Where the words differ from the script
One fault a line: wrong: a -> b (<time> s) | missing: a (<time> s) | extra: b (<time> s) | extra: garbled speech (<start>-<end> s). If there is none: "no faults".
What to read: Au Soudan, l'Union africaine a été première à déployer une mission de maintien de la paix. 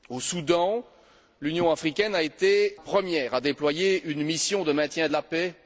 no faults